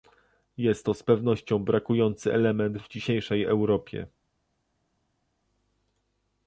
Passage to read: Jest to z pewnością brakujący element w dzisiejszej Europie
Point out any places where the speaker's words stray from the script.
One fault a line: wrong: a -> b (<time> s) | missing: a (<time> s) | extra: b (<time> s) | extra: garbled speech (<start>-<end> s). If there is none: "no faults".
no faults